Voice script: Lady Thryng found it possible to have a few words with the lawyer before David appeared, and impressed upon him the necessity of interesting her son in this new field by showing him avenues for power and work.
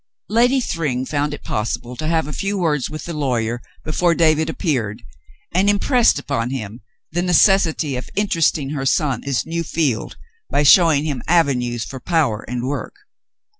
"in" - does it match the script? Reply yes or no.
no